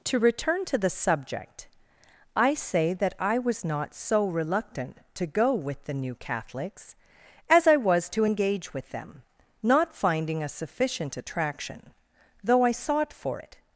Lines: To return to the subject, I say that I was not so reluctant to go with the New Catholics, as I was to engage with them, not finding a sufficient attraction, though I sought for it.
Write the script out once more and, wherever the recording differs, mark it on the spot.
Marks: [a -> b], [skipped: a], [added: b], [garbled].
To return to the subject, I say that I was not so reluctant to go with the New Catholics, as I was to engage with them, not finding a sufficient attraction, though I sought for it.